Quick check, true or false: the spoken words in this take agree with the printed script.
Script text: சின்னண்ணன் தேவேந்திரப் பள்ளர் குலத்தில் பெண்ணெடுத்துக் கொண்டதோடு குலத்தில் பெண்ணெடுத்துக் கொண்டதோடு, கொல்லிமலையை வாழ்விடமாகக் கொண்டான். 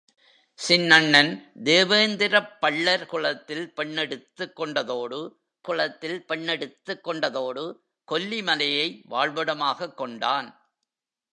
true